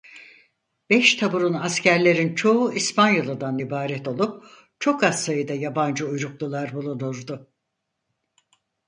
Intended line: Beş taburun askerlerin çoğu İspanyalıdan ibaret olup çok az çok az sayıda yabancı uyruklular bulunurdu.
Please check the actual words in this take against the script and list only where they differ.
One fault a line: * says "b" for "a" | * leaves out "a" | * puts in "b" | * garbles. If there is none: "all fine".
* leaves out "çok az"